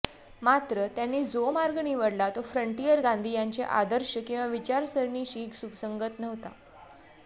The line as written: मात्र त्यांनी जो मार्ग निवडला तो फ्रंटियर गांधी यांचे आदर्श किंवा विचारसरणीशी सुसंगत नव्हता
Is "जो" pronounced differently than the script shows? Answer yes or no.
no